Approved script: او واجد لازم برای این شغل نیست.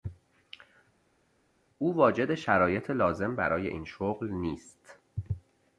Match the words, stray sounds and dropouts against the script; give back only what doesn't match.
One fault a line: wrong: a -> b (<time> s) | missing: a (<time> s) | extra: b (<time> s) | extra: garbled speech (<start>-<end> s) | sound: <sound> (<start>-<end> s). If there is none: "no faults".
extra: شرایط (2.3 s)